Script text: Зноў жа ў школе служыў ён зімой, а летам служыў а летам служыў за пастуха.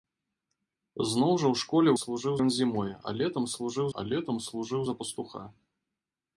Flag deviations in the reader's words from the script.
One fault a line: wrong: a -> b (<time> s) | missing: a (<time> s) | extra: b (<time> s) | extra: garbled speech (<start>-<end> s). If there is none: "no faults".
no faults